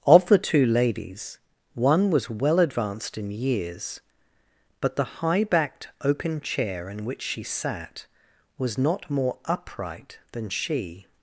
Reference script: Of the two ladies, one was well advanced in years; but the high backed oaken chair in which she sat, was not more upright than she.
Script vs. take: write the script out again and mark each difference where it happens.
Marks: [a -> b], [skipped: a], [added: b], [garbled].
Of the two ladies, one was well advanced in years; but the high backed oaken chair in which she sat, was not more upright than she.